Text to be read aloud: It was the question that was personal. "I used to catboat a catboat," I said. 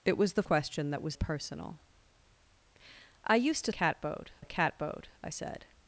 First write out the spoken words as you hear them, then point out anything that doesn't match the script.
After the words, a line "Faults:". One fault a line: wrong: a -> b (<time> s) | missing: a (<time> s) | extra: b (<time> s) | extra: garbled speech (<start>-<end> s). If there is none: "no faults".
It was the question that was personal. "I used to catboat a catboat," I said.
Faults:
no faults